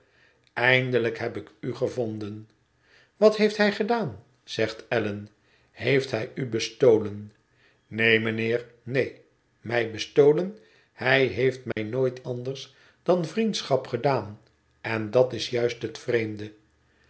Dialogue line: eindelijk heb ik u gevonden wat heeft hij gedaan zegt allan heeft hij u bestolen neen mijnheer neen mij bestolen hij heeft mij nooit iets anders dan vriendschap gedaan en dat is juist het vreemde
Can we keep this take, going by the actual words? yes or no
no